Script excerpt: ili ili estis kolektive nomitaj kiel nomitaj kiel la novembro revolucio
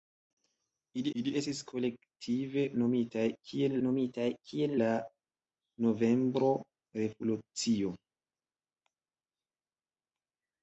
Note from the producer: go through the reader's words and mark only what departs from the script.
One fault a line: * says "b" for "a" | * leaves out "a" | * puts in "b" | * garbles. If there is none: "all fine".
all fine